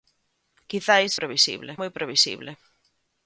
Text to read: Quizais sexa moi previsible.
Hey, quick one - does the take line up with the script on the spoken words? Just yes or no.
no